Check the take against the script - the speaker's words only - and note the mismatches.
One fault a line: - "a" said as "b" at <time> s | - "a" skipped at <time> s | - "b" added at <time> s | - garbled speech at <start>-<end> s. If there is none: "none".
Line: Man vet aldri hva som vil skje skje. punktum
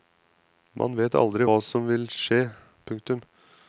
- "skje" skipped at 2.5 s